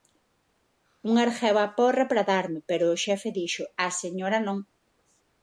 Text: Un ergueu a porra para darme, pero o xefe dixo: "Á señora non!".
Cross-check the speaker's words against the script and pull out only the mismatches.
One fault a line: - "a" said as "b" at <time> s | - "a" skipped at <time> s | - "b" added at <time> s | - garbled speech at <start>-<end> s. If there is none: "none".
none